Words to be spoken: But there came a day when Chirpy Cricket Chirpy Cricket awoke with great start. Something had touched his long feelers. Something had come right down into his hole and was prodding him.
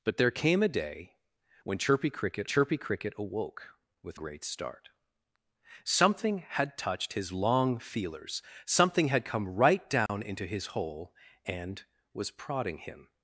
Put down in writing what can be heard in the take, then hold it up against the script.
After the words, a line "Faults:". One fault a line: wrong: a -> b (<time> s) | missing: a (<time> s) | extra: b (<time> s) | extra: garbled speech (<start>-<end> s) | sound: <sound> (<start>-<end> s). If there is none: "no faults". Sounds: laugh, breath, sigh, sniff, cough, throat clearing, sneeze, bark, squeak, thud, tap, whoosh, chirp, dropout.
But there came a day when Chirpy Cricket Chirpy Cricket awoke with great start. Something had touched his long feelers. Something had come right down into his hole and was prodding him.
Faults:
sound: dropout (10.1-10.1 s)